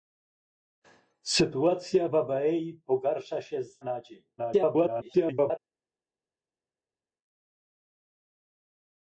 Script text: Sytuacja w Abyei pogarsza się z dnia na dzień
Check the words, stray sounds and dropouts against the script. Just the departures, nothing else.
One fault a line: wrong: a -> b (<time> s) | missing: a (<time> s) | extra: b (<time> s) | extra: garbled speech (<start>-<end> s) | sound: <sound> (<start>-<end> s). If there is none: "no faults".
missing: dnia (3.8 s)
extra: garbled speech (4.4-5.6 s)